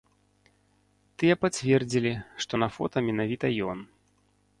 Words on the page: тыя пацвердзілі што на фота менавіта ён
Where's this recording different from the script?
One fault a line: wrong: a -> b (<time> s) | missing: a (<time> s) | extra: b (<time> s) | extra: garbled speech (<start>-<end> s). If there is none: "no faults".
no faults